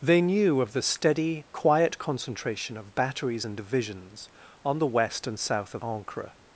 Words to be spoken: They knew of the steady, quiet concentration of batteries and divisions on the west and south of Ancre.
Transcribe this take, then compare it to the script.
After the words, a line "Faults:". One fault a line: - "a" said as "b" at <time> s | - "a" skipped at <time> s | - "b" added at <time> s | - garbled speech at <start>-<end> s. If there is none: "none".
They knew of the steady, quiet concentration of batteries and divisions on the west and south of Ancre.
Faults:
none